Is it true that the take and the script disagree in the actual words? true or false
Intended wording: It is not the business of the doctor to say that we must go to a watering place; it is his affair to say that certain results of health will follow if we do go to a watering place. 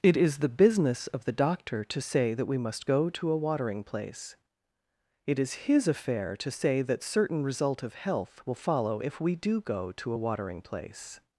true